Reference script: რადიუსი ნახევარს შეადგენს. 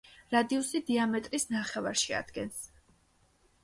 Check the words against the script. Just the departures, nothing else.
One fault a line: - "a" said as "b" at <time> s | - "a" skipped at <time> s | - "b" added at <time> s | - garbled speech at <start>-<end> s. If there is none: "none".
- "დიამეტრის" added at 0.9 s